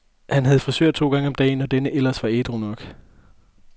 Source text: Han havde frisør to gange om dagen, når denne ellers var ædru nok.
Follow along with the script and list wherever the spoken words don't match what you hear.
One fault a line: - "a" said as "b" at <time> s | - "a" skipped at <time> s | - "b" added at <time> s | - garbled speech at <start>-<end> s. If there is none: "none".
none